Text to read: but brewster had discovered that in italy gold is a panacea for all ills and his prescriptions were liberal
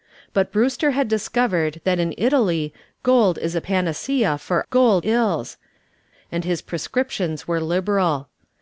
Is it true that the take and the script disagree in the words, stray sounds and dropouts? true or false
true